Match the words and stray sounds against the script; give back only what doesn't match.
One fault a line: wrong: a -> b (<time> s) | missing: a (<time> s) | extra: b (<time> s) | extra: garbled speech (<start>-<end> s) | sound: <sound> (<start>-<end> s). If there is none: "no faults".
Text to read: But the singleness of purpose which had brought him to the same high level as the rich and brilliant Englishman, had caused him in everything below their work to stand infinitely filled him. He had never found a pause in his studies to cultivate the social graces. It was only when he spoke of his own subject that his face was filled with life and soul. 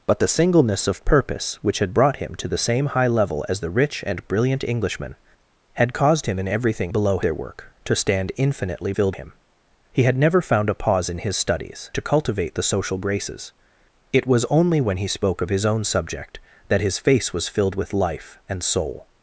no faults